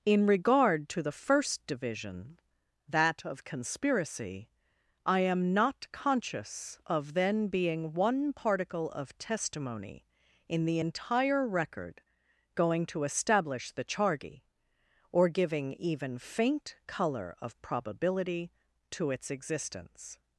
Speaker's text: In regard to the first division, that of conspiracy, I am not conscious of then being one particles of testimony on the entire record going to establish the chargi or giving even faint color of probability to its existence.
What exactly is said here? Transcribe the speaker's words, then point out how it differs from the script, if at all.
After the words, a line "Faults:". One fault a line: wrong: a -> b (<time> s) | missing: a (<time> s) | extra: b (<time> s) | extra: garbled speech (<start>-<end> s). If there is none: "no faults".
In regard to the first division, that of conspiracy, I am not conscious of then being one particle of testimony in the entire record going to establish the chargi or giving even faint color of probability to its existence.
Faults:
wrong: particles -> particle (8.3 s)
wrong: on -> in (10.5 s)